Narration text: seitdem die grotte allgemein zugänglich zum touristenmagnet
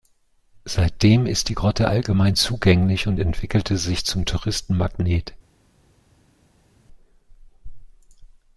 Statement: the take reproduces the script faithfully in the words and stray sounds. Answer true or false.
false